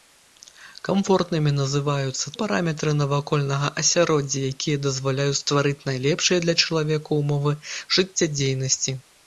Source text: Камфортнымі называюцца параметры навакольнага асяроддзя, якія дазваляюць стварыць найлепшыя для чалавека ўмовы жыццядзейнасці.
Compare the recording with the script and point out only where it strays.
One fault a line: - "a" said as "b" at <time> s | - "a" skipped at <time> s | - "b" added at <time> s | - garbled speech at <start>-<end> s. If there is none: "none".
none